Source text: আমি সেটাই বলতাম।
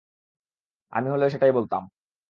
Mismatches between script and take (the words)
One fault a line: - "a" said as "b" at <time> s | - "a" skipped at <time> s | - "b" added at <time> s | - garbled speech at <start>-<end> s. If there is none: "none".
- "হলেও" added at 1.1 s